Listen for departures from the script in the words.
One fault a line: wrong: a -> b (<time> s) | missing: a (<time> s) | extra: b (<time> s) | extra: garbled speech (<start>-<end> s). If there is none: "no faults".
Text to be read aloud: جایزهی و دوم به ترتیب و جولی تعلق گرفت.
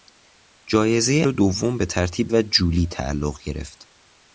no faults